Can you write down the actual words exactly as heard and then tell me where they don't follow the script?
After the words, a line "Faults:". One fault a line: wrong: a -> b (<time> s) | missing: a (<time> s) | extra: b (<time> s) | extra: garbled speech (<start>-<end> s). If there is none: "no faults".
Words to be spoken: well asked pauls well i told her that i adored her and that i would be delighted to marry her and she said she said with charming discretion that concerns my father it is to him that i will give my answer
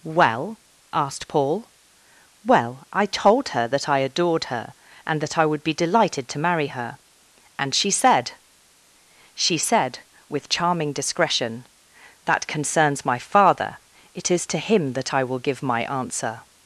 well asked paul well i told her that i adored her and that i would be delighted to marry her and she said she said with charming discretion that concerns my father it is to him that i will give my answer
Faults:
wrong: pauls -> paul (1.3 s)